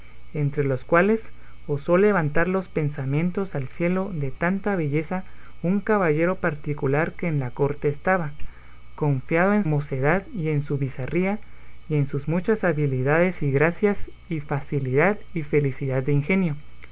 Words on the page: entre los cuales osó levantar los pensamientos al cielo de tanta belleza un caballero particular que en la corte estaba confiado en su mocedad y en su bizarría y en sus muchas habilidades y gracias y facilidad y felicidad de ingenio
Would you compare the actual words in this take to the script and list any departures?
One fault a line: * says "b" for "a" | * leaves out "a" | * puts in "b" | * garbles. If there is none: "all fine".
* leaves out "su"